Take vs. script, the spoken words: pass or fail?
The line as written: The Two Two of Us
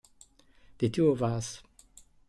fail